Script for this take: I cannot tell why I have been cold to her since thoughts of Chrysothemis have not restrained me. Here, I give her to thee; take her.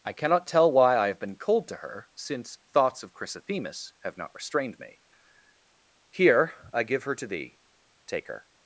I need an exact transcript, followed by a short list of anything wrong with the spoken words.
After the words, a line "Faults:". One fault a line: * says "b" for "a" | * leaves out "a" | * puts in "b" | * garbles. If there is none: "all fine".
I cannot tell why I have been cold to her since thoughts of Chrysothemis have not restrained me. Here, I give her to thee; take her.
Faults:
all fine